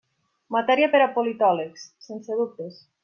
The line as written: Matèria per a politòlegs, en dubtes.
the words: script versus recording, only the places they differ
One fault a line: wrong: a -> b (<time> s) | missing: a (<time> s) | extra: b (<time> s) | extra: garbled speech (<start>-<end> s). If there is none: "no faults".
wrong: en -> sense (2.1 s)